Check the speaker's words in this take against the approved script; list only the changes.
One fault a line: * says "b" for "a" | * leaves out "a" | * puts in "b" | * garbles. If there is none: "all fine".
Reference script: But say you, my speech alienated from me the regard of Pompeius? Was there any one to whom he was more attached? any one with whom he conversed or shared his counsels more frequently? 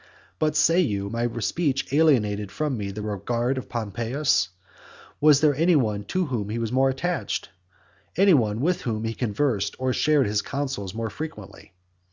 all fine